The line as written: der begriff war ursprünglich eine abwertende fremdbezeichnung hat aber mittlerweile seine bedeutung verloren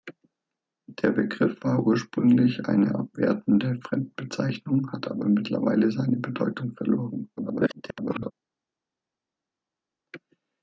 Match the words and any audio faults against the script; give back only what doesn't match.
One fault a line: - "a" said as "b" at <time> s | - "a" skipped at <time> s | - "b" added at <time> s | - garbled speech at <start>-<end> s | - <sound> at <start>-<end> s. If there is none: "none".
- garbled speech at 7.4-8.3 s